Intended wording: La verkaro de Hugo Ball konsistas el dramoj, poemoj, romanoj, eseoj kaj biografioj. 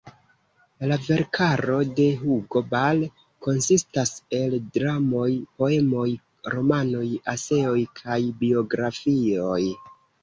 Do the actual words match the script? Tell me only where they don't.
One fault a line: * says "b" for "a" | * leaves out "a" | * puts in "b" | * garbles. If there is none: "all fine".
all fine